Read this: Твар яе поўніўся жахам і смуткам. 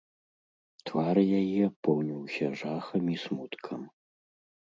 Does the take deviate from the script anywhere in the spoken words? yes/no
no